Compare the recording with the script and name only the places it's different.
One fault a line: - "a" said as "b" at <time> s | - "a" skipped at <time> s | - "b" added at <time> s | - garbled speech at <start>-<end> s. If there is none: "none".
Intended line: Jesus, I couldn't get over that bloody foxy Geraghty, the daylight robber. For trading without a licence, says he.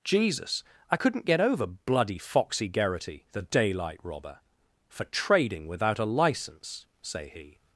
- "that" skipped at 1.7 s
- "says" said as "say" at 7.0 s